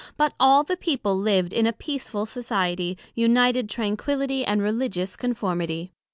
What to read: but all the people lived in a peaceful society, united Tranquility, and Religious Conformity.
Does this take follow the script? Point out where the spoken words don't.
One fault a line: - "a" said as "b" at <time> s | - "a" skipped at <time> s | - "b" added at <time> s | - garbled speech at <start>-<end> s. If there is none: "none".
none